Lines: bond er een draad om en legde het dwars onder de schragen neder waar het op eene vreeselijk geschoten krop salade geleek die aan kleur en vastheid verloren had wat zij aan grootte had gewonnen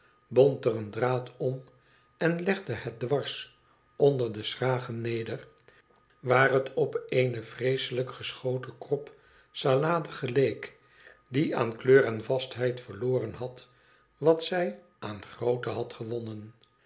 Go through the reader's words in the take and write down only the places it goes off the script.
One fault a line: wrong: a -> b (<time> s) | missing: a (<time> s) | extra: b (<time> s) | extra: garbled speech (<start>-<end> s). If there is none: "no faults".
no faults